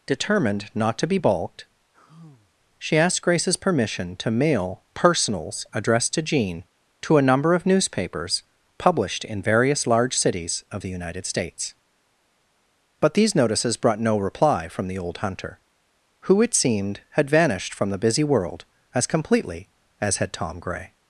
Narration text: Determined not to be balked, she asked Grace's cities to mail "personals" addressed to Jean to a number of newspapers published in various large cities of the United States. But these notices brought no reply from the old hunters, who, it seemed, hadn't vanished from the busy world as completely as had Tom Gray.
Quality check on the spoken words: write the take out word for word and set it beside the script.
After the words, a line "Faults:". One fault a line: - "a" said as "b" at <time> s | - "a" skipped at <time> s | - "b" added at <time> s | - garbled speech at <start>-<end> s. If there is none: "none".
Determined not to be balked, she asked Grace's permission to mail "personals" addressed to Jean to a number of newspapers published in various large cities of the United States. But these notices brought no reply from the old hunter, who, it seemed, had vanished from the busy world as completely as had Tom Gray.
Faults:
- "cities" said as "permission" at 3.6 s
- "hunters" said as "hunter" at 15.2 s
- "hadn't" said as "had" at 17.1 s